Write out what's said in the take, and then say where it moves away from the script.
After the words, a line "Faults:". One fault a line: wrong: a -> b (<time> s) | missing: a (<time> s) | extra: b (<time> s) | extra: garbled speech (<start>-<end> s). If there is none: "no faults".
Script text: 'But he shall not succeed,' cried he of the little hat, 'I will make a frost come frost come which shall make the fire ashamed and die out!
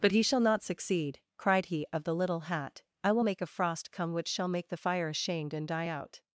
'But he shall not succeed,' cried he of the little hat, 'I will make a frost come which shall make the fire ashamed and die out!
Faults:
missing: frost come (4.1 s)